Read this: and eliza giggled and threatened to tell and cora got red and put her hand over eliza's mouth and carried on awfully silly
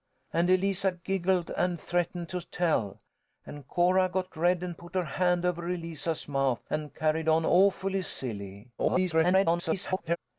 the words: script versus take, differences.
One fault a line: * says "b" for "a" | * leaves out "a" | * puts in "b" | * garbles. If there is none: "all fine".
* garbles